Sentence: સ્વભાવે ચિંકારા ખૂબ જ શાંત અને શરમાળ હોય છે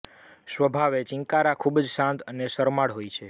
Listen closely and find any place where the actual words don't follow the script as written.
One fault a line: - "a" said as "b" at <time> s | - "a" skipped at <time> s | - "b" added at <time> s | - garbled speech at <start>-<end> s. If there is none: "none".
none